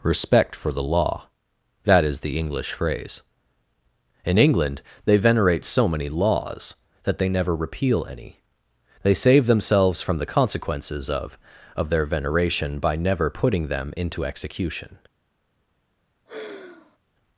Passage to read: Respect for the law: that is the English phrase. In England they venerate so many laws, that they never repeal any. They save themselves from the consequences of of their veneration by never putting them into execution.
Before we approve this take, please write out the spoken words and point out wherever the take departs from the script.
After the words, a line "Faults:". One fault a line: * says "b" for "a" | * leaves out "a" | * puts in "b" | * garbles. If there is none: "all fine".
Respect for the law: that is the English phrase. In England they venerate so many laws, that they never repeal any. They save themselves from the consequences of of their veneration by never putting them into execution.
Faults:
all fine